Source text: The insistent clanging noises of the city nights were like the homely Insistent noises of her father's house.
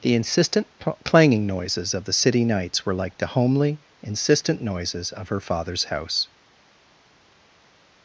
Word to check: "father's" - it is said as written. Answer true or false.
true